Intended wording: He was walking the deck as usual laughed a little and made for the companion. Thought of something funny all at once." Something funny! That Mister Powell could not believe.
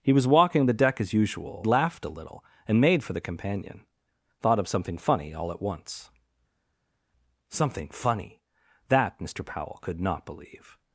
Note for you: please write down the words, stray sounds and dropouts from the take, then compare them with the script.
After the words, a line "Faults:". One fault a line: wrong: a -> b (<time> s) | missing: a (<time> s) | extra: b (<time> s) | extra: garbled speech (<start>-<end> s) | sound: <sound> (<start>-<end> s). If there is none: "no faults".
He was walking the deck as usual laughed a little and made for the companion. Thought of something funny all at once." Something funny! That Mister Powell could not believe.
Faults:
no faults